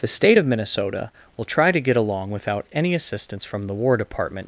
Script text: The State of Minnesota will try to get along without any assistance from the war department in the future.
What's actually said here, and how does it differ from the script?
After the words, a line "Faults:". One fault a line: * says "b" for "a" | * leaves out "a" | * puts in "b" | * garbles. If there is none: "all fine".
The State of Minnesota will try to get along without any assistance from the war department.
Faults:
* leaves out "in the future"